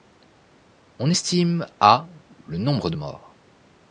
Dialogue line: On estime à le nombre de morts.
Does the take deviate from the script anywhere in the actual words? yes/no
no